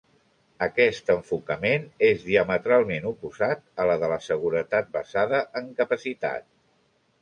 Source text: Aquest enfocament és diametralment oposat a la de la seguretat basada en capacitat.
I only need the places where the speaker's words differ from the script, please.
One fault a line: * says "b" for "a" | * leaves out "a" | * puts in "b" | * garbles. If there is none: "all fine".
all fine